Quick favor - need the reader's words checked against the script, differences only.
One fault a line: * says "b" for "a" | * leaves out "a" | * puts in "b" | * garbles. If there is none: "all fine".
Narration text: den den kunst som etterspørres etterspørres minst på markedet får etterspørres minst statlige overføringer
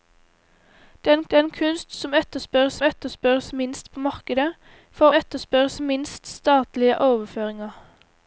all fine